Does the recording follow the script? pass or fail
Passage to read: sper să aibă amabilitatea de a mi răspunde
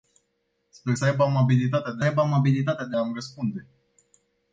fail